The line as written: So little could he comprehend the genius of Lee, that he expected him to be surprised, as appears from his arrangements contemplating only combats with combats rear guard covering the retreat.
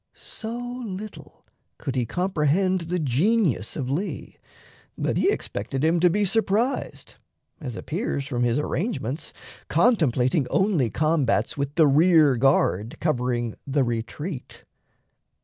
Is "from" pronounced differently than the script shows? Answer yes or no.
no